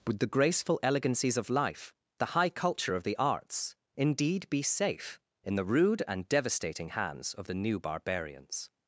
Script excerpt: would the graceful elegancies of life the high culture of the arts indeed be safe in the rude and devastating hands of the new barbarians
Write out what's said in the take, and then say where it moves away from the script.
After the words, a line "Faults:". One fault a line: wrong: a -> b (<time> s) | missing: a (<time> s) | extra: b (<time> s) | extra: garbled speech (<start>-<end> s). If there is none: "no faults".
would the graceful elegancies of life the high culture of the arts indeed be safe in the rude and devastating hands of the new barbarians
Faults:
no faults